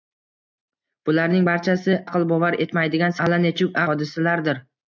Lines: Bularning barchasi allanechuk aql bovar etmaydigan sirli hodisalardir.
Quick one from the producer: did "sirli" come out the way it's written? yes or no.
no